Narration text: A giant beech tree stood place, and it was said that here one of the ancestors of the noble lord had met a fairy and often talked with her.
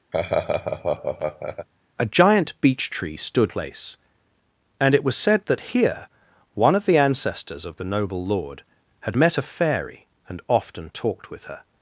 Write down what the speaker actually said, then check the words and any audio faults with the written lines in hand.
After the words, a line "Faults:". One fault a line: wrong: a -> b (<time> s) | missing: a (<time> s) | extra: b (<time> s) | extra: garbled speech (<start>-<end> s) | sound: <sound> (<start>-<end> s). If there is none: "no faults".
A giant beech tree stood place, and it was said that here one of the ancestors of the noble lord had met a fairy and often talked with her.
Faults:
sound: laugh (0.1-1.7 s)